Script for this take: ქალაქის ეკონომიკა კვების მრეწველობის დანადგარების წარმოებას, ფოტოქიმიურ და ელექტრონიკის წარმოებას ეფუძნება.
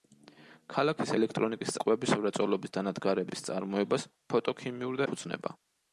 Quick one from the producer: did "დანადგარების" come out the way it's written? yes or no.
yes